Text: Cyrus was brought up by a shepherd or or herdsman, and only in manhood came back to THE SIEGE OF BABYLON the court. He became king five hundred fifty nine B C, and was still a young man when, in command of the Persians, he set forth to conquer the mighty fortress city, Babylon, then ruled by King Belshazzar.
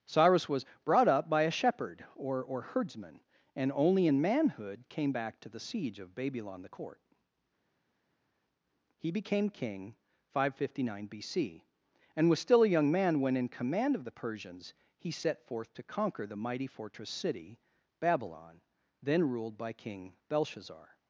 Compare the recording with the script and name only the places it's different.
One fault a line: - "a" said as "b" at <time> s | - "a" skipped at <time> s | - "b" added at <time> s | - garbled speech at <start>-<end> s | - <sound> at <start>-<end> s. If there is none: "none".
none